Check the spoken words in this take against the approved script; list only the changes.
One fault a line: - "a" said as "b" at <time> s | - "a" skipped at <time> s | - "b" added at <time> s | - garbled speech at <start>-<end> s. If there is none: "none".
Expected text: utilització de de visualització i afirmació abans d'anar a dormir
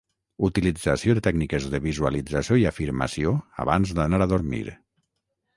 - "tècniques" added at 1.3 s